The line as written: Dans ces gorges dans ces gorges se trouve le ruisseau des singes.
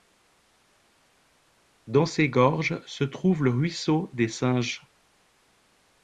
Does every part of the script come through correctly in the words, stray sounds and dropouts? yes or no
no